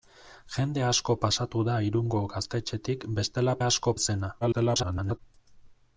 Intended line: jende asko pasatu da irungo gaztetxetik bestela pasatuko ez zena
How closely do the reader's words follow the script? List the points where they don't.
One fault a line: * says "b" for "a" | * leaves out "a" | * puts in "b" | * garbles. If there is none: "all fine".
* says "asko" for "pasatuko"
* garbles